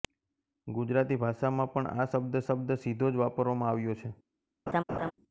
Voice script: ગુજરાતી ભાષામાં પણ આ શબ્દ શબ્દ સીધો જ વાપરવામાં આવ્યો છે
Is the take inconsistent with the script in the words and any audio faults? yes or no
yes